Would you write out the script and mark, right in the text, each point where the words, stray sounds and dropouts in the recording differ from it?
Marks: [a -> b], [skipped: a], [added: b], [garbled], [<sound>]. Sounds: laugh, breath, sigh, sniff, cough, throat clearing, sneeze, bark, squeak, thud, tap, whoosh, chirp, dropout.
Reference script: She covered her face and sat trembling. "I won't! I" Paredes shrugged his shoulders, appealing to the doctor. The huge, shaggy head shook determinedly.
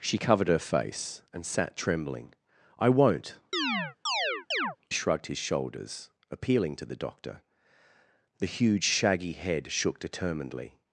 She covered her face and sat trembling. "I won't! [skipped: I" Paredes] [chirp] shrugged his shoulders, appealing to the doctor. The huge, shaggy head shook determinedly.